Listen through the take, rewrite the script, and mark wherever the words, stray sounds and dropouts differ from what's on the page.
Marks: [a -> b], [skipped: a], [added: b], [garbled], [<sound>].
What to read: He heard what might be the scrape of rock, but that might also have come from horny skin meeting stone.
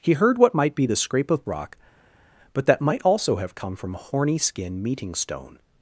He heard what might be the scrape of rock, but that might also have come from horny skin meeting stone.